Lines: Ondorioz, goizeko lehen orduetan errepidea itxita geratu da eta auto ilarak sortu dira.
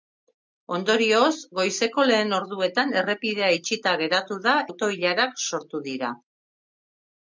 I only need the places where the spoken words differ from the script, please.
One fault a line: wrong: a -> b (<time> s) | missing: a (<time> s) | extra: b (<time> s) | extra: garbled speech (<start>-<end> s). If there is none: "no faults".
missing: eta (4.5 s)